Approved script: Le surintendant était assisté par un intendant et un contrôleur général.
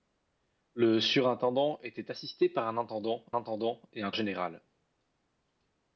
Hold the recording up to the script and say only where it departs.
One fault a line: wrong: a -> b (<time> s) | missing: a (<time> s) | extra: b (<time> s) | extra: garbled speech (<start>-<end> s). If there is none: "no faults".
extra: intendant (3.3 s)
missing: contrôleur (4.1 s)